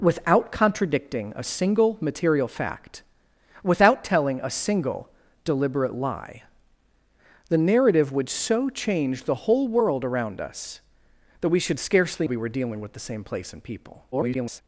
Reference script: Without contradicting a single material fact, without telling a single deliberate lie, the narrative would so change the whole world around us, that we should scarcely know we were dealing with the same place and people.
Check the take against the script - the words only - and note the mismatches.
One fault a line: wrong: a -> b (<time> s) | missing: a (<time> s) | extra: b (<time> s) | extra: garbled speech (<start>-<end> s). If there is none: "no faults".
missing: know (12.3 s)
extra: garbled speech (14.1-14.6 s)